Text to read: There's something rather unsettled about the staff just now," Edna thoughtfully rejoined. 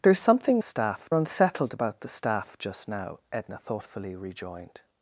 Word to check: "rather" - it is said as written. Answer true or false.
false